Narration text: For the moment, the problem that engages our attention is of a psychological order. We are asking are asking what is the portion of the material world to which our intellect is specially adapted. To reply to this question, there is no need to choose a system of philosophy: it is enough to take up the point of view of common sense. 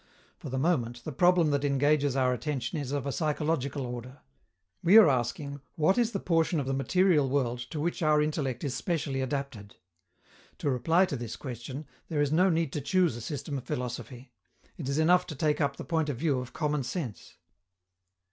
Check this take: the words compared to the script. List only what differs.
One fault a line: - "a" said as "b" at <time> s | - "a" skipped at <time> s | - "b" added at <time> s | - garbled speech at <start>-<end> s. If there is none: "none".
- "are asking" skipped at 5.6 s